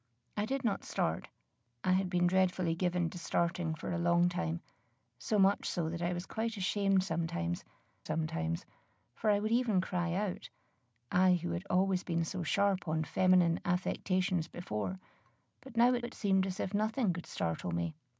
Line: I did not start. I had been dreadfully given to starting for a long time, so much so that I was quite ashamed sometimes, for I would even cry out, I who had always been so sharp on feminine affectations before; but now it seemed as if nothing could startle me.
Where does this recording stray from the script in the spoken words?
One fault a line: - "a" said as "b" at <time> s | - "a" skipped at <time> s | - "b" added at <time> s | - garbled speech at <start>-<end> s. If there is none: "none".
- "sometimes" added at 8.0 s
- "it" added at 16.0 s